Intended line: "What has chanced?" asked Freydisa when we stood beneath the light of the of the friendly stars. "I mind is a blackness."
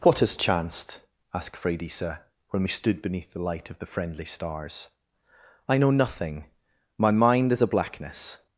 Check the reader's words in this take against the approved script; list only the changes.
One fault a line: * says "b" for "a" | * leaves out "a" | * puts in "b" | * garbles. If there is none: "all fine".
* leaves out "of the"
* puts in "know nothing my"